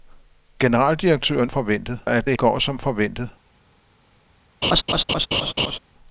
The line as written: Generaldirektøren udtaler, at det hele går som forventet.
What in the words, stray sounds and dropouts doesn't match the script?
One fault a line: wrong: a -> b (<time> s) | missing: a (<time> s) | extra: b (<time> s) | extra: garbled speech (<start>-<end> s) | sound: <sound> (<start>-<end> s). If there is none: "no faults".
wrong: udtaler -> forventet (1.5 s)
missing: hele (2.4 s)
sound: laugh (4.6-5.8 s)